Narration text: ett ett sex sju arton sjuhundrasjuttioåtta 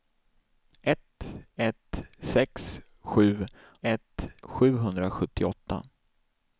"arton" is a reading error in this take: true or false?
true